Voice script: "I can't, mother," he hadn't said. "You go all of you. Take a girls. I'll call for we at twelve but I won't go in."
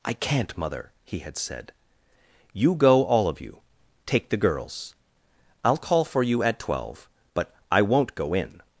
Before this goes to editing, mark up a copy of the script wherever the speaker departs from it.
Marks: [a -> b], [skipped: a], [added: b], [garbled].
"I can't, mother," he [hadn't -> had] said. "You go all of you. Take [a -> the] girls. I'll call for [we -> you] at twelve but I won't go in."